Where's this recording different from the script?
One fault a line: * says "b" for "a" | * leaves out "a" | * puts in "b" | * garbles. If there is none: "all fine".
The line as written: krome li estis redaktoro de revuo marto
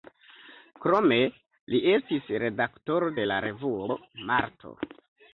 * puts in "la"